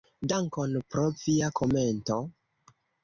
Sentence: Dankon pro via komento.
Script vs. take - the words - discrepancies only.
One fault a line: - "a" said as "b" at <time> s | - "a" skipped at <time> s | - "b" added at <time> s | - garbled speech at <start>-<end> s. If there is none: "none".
none